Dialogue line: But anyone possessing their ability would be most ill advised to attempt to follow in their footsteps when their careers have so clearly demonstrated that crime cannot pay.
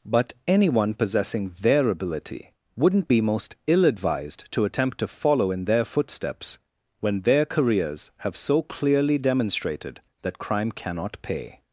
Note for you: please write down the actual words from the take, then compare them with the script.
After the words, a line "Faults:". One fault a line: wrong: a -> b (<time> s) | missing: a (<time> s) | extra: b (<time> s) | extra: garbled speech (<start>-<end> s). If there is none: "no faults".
But anyone possessing their ability wouldn't be most ill advised to attempt to follow in their footsteps when their careers have so clearly demonstrated that crime cannot pay.
Faults:
wrong: would -> wouldn't (2.8 s)